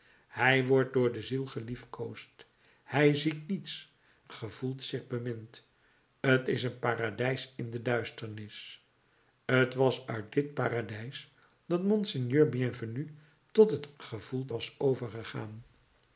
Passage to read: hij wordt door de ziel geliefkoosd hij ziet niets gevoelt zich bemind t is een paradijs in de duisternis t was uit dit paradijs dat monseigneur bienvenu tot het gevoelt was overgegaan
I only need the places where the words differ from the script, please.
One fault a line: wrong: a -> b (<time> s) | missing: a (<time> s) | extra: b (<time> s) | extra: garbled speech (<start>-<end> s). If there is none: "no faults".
no faults